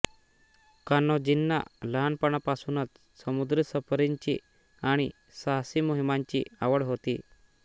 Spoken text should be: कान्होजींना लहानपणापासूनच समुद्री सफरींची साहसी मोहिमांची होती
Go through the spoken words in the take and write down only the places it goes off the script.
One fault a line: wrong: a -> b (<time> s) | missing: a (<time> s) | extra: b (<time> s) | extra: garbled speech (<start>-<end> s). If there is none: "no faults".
extra: आणि (4.8 s)
extra: आवड (6.6 s)